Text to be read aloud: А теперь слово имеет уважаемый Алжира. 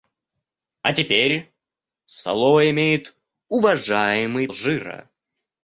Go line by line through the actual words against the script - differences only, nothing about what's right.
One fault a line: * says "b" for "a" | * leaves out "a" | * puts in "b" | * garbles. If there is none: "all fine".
all fine